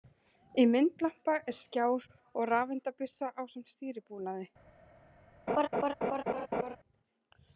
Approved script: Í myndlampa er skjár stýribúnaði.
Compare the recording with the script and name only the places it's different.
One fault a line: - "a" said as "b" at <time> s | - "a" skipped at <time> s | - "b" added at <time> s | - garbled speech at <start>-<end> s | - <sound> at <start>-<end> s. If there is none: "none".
- "og rafeindabyssa ásamt" added at 2.1 s
- laugh at 5.5-6.8 s